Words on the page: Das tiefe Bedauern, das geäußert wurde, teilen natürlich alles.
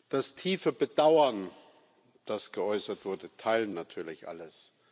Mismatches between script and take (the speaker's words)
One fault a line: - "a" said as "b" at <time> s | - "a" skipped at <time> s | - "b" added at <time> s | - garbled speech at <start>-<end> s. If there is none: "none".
none